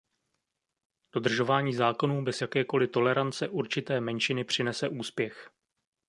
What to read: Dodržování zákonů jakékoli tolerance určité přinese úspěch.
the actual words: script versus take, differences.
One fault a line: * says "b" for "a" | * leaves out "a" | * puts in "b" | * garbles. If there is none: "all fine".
* puts in "bez"
* puts in "menšiny"